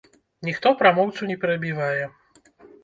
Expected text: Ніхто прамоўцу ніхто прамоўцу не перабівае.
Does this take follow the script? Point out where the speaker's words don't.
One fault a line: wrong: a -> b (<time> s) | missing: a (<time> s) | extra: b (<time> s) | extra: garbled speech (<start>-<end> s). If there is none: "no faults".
missing: ніхто прамоўцу (1.3 s)